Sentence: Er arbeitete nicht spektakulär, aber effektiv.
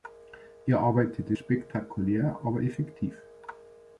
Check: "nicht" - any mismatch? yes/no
yes